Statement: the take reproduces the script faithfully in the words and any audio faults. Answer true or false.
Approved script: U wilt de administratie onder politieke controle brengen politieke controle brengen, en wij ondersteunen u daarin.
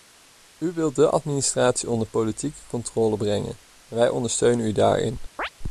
false